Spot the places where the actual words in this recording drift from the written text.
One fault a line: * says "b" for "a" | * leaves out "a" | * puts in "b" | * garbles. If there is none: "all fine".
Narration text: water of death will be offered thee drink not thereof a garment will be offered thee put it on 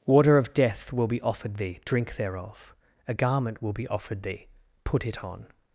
* leaves out "not"